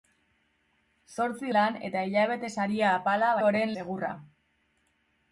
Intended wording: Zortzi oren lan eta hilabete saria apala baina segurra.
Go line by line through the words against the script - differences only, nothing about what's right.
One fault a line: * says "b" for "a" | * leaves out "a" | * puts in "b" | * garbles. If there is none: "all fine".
* leaves out "oren"
* says "oren" for "baina"